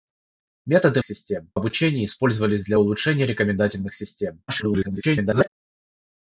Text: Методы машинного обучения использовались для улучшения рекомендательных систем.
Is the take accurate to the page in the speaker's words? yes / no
no